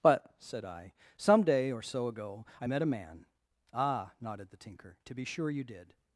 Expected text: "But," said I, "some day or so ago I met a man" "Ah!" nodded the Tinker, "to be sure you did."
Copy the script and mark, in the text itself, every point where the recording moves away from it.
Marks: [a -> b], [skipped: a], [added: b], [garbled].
"But," said I, "some day or so ago I met a man" "Ah!" nodded the Tinker, "to be sure you did."